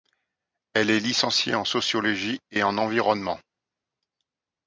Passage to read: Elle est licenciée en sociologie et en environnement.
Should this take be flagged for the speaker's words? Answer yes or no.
no